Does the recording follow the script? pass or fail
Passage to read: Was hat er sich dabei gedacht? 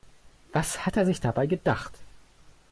pass